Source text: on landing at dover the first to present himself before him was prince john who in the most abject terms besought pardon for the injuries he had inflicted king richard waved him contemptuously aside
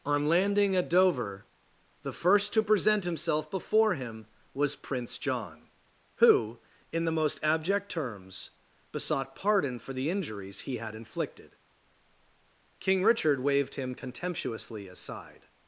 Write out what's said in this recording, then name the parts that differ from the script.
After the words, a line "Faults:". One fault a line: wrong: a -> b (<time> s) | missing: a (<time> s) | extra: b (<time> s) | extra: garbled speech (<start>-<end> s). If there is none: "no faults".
on landing at dover the first to present himself before him was prince john who in the most abject terms besought pardon for the injuries he had inflicted king richard waved him contemptuously aside
Faults:
no faults